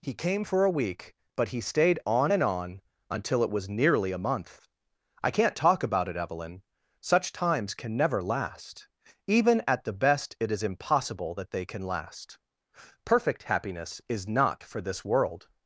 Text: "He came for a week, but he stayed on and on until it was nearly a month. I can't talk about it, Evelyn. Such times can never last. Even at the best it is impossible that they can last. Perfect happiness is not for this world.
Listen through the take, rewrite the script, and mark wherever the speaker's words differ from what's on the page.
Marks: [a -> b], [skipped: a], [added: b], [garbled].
"He came for a week, but he stayed on and on until it was nearly a month. I can't talk about it, Evelyn. Such times can never last. Even at the best it is impossible that they can last. Perfect happiness is not for this world.